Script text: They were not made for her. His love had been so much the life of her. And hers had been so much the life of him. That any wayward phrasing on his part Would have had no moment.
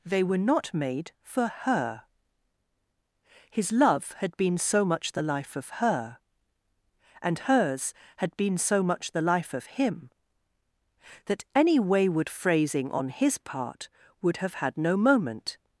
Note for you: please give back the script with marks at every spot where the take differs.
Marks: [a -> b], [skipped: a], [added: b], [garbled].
They were not made for her. His love had been so much the life of her. And hers had been so much the life of him. That any wayward phrasing on his part Would have had no moment.